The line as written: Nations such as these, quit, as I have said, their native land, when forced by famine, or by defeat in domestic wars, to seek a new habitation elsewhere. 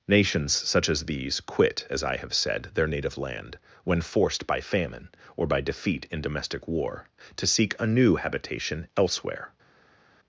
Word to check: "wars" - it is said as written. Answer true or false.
false